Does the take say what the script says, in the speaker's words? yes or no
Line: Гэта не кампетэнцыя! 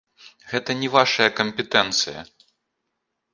no